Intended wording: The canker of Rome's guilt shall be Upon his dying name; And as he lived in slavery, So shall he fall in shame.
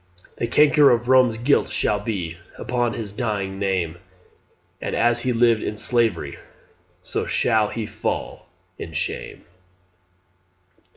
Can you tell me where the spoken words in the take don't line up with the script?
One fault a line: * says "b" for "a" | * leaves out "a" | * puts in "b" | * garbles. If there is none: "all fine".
all fine